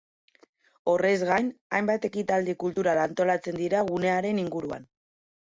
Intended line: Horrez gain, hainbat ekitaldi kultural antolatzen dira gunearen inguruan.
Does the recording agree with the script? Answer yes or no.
yes